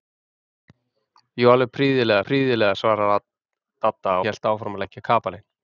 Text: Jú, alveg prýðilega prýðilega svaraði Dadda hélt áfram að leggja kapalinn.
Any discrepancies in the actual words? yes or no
no